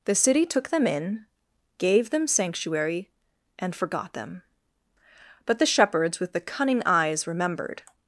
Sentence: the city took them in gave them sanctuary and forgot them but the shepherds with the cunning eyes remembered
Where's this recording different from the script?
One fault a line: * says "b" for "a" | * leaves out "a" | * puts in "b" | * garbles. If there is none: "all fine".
all fine